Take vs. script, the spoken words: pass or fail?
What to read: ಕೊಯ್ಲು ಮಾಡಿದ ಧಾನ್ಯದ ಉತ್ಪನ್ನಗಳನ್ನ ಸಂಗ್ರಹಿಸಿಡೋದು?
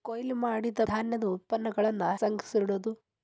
pass